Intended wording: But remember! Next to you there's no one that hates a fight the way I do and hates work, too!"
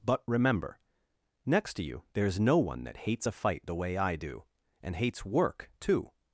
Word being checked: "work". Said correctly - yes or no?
yes